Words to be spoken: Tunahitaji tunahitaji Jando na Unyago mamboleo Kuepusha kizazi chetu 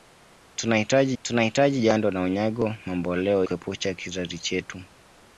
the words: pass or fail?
pass